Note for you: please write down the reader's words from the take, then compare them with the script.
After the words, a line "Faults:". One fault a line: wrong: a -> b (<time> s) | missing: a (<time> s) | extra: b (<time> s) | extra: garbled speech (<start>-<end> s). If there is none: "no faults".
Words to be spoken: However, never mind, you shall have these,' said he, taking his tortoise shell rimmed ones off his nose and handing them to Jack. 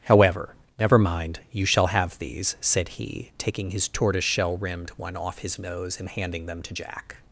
However, never mind, you shall have these,' said he, taking his tortoise shell rimmed one off his nose and handing them to Jack.
Faults:
wrong: ones -> one (4.9 s)